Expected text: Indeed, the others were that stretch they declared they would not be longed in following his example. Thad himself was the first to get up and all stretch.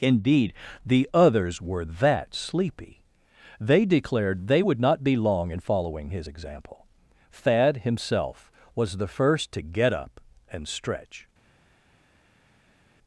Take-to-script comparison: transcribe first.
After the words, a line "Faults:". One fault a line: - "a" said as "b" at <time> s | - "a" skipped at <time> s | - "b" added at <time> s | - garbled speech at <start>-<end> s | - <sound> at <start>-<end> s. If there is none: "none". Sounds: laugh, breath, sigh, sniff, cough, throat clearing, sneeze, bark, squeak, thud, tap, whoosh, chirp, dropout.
Indeed, the others were that sleepy they declared they would not be long in following his example. Thad himself was the first to get up and stretch.
Faults:
- "stretch" said as "sleepy" at 2.3 s
- "longed" said as "long" at 5.2 s
- "all" skipped at 10.7 s